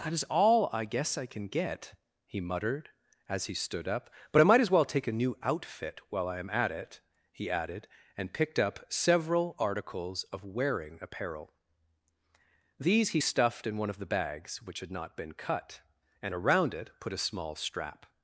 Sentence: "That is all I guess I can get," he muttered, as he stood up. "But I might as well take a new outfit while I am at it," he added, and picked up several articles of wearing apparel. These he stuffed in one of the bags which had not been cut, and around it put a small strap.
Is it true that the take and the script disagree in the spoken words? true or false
false